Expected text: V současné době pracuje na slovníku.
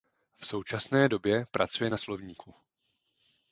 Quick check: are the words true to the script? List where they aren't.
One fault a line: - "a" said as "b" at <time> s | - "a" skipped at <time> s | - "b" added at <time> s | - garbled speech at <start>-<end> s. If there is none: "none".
none